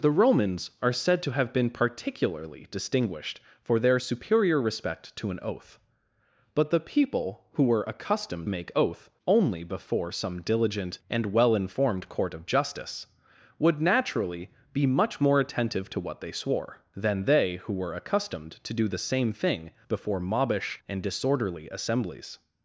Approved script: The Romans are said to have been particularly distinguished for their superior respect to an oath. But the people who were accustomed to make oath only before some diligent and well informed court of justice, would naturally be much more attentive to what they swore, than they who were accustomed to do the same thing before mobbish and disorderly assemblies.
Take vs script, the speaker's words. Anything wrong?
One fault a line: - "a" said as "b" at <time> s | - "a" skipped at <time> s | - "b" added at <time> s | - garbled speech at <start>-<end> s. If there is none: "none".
- "to" skipped at 8.5 s